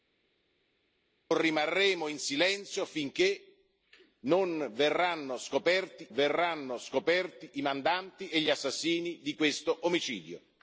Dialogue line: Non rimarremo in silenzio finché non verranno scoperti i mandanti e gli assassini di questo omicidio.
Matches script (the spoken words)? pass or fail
fail